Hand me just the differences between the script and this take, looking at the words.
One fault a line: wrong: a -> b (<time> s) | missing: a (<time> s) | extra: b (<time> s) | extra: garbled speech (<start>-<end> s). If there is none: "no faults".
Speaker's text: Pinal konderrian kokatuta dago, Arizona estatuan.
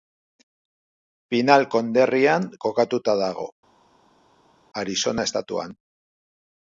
no faults